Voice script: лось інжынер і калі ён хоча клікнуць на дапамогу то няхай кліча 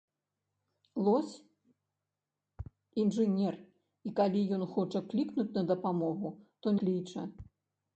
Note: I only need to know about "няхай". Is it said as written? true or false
false